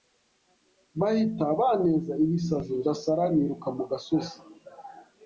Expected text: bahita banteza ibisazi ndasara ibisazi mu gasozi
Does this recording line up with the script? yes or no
no